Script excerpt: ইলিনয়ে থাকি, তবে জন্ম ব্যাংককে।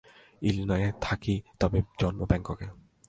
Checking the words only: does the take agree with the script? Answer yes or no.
yes